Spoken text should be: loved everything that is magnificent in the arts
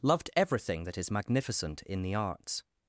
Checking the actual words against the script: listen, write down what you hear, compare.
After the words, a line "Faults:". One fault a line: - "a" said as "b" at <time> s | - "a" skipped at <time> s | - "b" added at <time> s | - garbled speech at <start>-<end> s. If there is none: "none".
loved everything that is magnificent in the arts
Faults:
none